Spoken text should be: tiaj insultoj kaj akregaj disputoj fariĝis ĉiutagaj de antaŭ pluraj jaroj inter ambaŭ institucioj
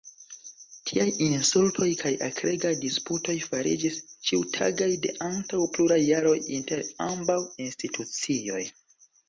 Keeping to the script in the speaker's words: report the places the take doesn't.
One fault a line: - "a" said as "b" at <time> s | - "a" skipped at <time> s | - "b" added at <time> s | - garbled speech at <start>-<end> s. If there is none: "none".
none